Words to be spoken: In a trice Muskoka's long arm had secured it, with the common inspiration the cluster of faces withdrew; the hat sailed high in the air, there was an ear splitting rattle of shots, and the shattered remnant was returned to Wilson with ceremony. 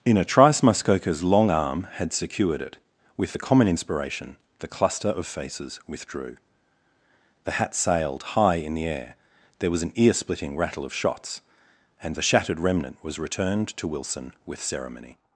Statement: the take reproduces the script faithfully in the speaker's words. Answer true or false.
true